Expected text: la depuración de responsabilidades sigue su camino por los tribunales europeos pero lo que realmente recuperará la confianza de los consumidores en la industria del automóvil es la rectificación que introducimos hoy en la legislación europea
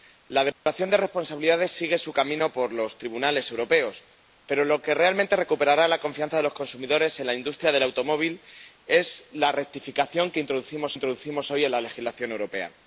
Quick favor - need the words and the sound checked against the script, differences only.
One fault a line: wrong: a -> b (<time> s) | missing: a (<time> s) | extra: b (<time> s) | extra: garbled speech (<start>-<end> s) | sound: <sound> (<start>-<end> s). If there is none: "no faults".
sound: dropout (0.5-0.7 s)
extra: introducimos (10.9 s)